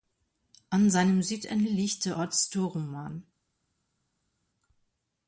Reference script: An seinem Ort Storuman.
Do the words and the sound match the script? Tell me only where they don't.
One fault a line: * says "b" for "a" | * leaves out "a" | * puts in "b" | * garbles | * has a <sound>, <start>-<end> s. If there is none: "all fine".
* puts in "Südende liegt der"